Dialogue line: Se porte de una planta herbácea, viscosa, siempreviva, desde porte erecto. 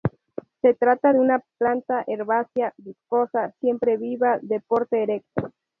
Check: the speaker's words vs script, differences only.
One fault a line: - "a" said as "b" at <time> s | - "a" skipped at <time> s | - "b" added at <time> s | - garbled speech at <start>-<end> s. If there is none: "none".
- "porte" said as "trata" at 0.7 s
- "desde" said as "de" at 4.4 s